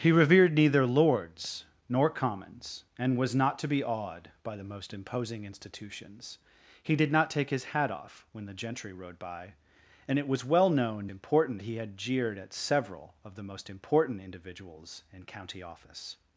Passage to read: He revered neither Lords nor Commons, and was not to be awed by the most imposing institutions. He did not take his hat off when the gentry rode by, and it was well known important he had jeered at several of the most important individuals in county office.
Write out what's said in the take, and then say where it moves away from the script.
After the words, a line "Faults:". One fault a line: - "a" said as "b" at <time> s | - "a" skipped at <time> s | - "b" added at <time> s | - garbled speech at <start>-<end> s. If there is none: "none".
He revered neither Lords nor Commons, and was not to be awed by the most imposing institutions. He did not take his hat off when the gentry rode by, and it was well known important he had jeered at several of the most important individuals in county office.
Faults:
none